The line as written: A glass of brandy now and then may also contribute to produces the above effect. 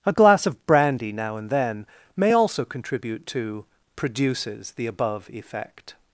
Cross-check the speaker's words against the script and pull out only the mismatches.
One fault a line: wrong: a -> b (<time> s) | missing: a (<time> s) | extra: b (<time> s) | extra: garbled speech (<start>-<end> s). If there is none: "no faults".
no faults